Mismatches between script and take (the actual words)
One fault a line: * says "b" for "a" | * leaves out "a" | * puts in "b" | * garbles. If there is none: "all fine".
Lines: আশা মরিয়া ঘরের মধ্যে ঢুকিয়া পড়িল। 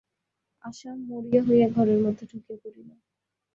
* puts in "হইয়া"